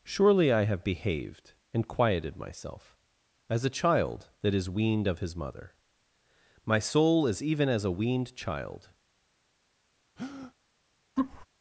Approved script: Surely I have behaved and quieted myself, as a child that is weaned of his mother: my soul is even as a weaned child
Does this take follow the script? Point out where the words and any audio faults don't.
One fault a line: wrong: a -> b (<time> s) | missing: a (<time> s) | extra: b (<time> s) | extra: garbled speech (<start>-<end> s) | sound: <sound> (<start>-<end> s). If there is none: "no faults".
sound: breath (10.2-10.5 s)
sound: laugh (11.2-11.5 s)